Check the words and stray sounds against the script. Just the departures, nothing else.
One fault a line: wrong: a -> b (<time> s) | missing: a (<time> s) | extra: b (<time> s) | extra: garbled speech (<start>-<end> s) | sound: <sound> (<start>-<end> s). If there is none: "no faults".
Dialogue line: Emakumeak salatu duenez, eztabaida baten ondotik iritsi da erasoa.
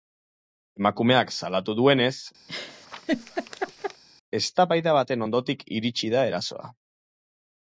sound: laugh (2.5-4.0 s)